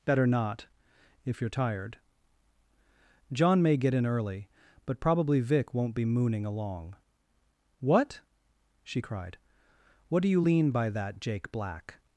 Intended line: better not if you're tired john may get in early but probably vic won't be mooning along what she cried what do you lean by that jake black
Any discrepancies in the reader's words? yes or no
no